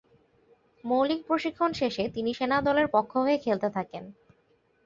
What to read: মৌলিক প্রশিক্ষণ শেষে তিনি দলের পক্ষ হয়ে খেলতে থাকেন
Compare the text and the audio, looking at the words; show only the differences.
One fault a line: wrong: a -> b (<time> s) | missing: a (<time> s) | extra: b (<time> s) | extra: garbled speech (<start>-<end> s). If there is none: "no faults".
extra: সেনা (2.3 s)